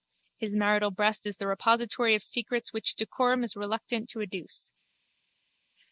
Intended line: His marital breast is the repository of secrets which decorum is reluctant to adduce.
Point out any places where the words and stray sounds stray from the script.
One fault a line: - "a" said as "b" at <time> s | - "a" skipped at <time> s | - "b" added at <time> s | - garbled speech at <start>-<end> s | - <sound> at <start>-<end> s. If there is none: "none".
none